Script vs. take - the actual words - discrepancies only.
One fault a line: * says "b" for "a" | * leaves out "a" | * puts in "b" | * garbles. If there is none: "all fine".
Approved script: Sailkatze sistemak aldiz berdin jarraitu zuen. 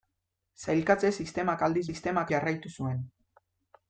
* says "sistemak" for "berdin"